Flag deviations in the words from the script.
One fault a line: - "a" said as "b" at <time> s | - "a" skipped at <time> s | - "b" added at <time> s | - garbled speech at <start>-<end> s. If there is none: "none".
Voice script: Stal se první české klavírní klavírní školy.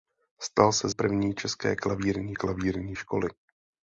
none